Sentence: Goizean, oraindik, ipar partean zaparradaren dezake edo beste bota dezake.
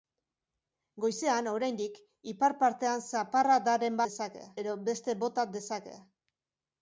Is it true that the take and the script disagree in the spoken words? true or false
false